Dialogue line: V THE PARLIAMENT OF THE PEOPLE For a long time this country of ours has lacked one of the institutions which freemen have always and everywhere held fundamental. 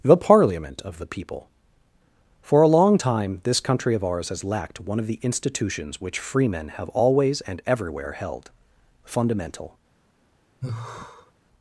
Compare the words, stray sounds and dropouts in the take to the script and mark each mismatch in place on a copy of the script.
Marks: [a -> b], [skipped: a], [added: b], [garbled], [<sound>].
[skipped: V] THE PARLIAMENT OF THE PEOPLE For a long time this country of ours has lacked one of the institutions which freemen have always and everywhere held fundamental. [sigh]